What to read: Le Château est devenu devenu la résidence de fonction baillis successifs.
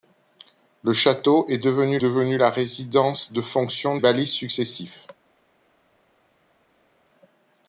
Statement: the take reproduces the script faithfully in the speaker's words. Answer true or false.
true